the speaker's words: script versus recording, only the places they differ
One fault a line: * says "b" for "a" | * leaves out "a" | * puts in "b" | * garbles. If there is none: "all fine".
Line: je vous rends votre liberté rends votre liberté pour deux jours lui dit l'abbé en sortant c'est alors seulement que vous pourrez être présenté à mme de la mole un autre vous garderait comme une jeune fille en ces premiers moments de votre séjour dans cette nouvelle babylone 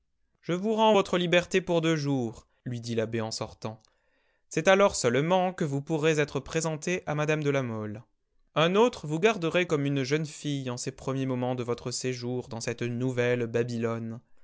* leaves out "rends votre liberté"